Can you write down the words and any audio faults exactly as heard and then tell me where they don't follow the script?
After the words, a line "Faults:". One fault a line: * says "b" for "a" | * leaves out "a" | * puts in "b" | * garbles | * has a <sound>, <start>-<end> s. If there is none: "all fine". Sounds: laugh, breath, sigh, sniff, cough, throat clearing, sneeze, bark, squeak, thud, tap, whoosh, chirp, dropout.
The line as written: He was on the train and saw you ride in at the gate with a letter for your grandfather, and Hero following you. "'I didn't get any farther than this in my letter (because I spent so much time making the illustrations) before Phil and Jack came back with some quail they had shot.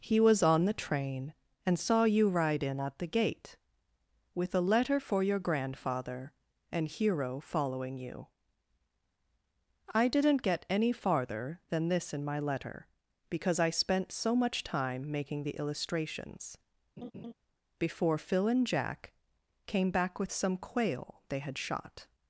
He was on the train and saw you ride in at the gate with a letter for your grandfather, and Hero following you. "'I didn't get any farther than this in my letter (because I spent so much time making the illustrations) before Phil and Jack came back with some quail they had shot.
Faults:
* has a laugh, 17.0-17.3 s